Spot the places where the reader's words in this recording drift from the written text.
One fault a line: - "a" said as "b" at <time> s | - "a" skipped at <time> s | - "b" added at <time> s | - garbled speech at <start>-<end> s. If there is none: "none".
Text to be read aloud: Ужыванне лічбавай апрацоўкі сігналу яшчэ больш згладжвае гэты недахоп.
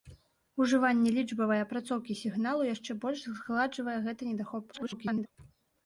- garbled speech at 4.7-5.3 s